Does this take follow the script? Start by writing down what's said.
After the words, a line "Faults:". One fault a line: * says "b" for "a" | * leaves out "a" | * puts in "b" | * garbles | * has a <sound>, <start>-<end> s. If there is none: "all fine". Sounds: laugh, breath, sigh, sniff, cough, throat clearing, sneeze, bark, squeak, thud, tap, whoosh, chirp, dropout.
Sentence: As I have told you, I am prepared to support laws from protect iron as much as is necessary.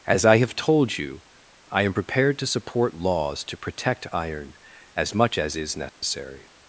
As I have told you, I am prepared to support laws to protect iron as much as is necessary.
Faults:
* says "to" for "from"
* has a dropout, 5.9-6.0 s